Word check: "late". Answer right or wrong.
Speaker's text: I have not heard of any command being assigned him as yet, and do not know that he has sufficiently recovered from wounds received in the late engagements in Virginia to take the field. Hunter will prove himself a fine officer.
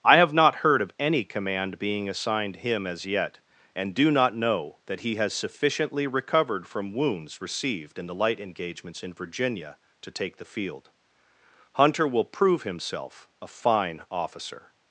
wrong